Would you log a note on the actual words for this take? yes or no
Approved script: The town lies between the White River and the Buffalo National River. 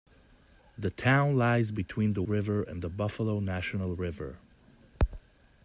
yes